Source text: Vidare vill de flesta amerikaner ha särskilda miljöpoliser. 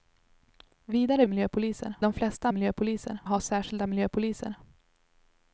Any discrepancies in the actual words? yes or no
yes